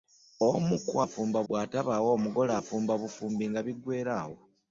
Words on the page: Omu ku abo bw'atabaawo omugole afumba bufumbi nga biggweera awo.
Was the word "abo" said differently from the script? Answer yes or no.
yes